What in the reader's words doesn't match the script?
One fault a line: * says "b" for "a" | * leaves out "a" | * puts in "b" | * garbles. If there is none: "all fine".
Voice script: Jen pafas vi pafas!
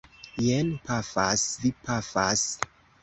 all fine